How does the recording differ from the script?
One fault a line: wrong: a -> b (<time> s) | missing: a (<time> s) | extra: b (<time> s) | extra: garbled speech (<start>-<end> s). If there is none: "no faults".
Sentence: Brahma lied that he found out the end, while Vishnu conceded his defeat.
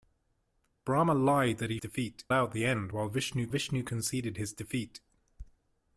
wrong: found -> defeat (1.8 s)
extra: Vishnu (3.5 s)